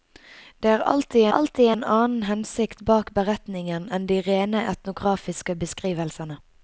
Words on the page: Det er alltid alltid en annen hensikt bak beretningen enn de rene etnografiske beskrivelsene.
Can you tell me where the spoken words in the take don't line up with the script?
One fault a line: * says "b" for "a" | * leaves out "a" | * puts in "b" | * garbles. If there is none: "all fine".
all fine